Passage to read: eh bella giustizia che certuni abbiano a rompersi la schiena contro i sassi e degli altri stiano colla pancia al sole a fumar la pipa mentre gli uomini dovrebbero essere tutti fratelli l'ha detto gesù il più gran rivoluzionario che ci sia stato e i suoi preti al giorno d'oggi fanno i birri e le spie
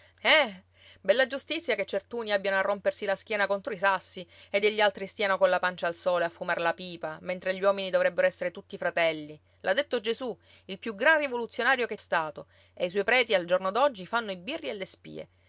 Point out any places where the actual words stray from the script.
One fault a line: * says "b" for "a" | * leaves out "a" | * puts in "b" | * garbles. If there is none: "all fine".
* leaves out "ci sia"